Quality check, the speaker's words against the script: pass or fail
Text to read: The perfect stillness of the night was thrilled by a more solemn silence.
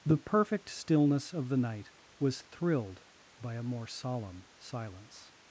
pass